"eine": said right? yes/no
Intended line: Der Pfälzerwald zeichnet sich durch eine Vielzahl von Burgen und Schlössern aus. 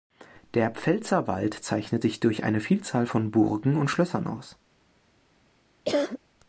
yes